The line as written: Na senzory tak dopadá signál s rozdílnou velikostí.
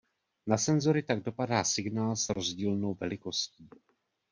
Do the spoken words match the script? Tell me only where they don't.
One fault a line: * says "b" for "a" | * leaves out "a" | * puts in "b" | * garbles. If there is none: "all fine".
all fine